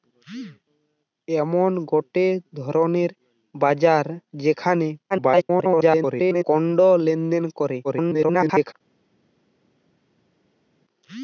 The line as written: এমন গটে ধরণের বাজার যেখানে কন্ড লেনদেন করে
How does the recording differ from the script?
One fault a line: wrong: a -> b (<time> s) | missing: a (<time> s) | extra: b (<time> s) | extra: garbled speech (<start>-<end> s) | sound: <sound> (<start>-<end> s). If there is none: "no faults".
extra: garbled speech (5.1-6.4 s)
extra: garbled speech (7.8-8.7 s)